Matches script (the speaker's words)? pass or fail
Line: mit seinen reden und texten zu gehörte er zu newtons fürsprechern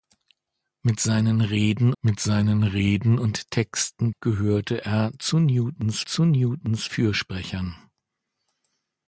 fail